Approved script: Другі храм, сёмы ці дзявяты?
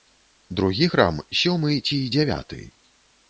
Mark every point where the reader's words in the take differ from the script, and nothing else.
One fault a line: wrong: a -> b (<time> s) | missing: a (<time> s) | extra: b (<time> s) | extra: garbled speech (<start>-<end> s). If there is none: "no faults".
no faults